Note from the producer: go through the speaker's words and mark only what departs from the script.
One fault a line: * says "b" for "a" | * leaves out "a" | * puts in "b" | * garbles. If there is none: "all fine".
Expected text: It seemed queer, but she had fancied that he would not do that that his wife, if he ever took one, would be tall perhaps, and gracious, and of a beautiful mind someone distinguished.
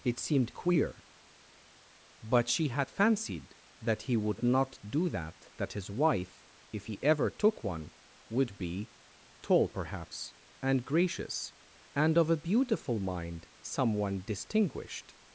all fine